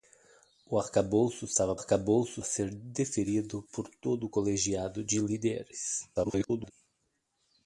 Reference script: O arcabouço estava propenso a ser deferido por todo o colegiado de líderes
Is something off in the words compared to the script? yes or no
yes